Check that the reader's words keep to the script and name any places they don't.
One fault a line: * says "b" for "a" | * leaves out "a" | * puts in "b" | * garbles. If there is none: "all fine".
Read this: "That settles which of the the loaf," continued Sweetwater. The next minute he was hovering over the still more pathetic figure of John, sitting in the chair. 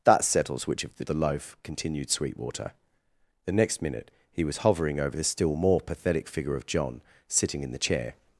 all fine